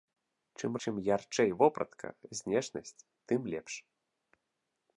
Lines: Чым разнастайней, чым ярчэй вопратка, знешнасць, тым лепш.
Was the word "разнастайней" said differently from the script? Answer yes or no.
yes